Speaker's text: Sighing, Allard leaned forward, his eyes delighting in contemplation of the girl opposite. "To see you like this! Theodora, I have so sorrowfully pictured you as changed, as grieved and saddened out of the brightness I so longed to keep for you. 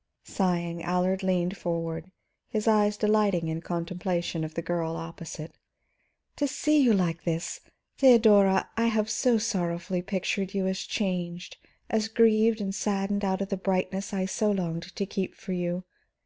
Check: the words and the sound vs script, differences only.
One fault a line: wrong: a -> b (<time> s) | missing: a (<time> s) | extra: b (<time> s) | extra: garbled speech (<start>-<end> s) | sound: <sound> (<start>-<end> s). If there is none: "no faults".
no faults